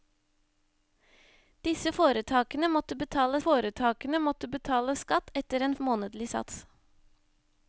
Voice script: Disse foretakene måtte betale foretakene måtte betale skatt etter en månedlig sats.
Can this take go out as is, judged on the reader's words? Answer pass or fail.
pass